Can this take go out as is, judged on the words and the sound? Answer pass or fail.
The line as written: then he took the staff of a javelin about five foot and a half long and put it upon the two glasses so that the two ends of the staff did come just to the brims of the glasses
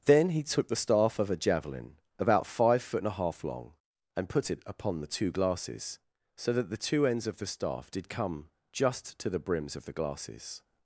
pass